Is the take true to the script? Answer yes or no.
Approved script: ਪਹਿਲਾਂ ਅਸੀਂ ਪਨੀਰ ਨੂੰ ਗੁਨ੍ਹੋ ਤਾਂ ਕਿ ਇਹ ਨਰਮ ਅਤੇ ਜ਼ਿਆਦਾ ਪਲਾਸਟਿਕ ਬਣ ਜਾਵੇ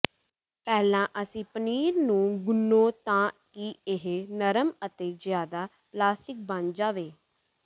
yes